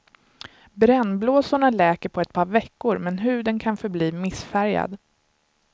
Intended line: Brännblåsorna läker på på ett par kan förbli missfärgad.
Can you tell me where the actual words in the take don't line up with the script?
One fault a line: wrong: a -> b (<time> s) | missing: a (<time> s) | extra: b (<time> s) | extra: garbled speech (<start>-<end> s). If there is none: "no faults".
missing: på (2.2 s)
extra: veckor men huden (2.5 s)